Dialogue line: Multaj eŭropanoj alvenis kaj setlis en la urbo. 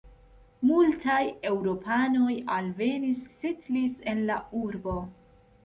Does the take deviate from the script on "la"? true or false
false